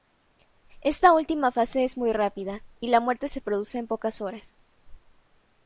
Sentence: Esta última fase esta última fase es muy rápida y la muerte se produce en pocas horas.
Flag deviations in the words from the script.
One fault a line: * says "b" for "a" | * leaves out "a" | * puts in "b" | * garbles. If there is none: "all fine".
* leaves out "esta última fase"